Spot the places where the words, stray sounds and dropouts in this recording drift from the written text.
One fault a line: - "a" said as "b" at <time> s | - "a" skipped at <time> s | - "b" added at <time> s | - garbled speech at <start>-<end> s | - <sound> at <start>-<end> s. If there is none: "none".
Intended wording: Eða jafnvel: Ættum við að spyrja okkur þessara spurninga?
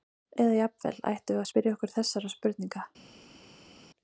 none